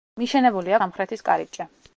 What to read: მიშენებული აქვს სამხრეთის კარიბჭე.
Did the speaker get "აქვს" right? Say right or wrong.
wrong